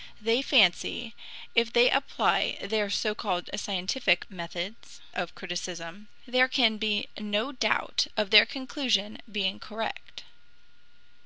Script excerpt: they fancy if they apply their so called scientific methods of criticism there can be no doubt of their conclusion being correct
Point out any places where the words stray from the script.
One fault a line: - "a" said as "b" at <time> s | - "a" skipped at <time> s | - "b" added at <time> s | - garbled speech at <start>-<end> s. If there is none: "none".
none